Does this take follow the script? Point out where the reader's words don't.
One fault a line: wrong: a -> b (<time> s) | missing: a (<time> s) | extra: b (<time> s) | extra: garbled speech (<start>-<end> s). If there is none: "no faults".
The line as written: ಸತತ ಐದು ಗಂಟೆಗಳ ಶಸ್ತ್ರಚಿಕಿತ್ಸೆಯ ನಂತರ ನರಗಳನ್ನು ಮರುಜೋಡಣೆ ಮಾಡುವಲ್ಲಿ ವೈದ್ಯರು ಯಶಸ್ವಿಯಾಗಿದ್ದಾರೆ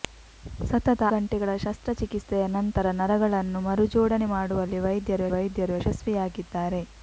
missing: ಐದು (1.0 s)
extra: ವೈದ್ಯರು (5.3 s)